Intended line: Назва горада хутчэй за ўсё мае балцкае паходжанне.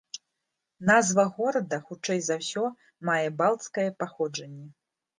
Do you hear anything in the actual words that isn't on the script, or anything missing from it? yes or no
no